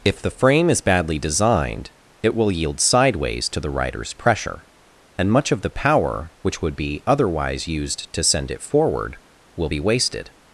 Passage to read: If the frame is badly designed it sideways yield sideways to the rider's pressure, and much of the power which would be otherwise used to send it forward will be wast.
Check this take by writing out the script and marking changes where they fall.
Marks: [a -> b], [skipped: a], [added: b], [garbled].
If the frame is badly designed it [sideways -> will] yield sideways to the rider's pressure, and much of the power which would be otherwise used to send it forward will be [wast. -> wasted]